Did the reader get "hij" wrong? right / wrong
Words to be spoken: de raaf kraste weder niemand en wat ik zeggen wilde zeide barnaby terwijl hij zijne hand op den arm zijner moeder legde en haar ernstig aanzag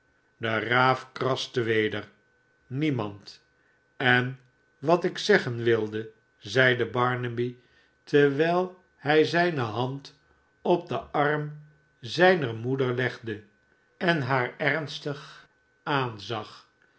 right